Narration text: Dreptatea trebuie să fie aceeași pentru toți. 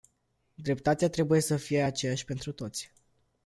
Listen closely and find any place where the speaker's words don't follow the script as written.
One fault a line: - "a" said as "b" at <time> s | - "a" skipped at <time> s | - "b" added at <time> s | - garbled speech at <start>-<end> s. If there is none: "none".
none